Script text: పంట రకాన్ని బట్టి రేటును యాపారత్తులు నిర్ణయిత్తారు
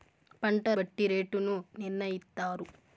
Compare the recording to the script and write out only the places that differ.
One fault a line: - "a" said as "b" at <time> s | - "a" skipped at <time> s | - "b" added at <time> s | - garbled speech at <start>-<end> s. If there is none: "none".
- "రకాన్ని" skipped at 0.6 s
- "యాపారత్తులు" skipped at 1.5 s